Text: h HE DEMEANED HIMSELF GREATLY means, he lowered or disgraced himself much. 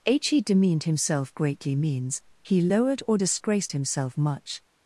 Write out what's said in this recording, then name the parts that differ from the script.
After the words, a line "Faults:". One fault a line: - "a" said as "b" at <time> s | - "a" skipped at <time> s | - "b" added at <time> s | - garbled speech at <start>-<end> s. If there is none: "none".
h HE DEMEANED HIMSELF GREATLY means, he lowered or disgraced himself much.
Faults:
none